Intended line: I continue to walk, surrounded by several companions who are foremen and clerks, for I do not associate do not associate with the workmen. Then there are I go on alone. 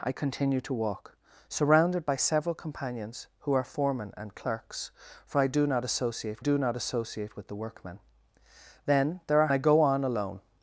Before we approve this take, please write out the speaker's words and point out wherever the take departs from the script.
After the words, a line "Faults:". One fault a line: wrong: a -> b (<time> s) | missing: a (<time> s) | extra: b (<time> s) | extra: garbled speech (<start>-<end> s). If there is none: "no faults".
I continue to walk, surrounded by several companions who are foremen and clerks, for I do not associate do not associate with the workmen. Then there are I go on alone.
Faults:
no faults